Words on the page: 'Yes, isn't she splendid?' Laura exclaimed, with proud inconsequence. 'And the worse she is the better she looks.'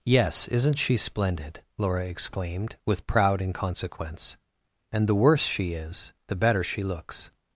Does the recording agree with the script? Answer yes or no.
yes